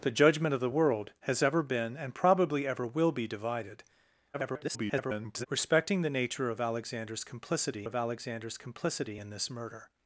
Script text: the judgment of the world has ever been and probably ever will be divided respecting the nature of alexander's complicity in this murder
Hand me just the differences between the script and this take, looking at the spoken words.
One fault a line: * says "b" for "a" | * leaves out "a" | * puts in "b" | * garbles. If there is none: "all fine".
* garbles
* puts in "of alexander's complicity"